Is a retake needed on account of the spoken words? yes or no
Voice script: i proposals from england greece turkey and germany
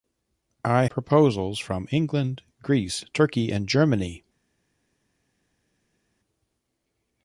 no